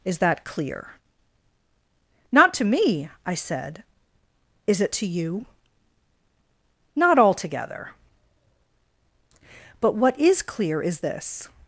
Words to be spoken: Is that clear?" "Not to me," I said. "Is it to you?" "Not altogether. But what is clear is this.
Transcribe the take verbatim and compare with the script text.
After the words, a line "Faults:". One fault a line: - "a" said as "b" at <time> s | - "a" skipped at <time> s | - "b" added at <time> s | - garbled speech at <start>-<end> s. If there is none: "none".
Is that clear?" "Not to me," I said. "Is it to you?" "Not altogether. But what is clear is this.
Faults:
none